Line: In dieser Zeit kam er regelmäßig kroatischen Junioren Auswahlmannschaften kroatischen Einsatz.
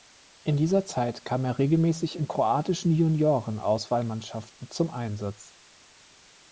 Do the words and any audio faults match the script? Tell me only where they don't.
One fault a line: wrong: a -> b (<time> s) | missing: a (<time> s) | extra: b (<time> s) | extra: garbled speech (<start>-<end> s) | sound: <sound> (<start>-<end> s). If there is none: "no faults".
extra: in (2.1 s)
wrong: kroatischen -> zum (4.7 s)